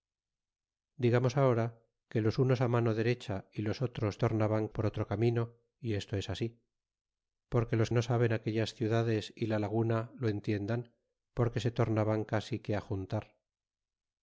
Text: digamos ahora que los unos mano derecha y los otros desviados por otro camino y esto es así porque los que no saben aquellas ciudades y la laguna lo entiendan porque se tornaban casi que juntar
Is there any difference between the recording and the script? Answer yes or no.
yes